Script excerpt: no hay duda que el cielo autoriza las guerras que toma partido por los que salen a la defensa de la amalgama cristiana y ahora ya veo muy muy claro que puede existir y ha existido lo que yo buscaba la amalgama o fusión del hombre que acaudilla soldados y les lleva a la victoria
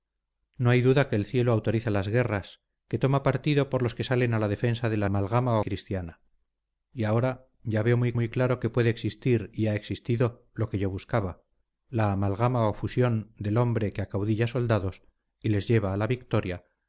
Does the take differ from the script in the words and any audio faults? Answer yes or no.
no